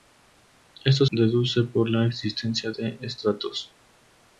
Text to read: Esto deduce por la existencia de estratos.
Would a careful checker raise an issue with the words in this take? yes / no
no